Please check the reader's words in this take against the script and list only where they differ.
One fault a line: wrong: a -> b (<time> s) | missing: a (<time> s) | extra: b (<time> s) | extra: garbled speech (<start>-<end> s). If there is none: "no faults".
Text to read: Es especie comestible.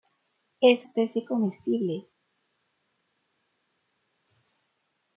no faults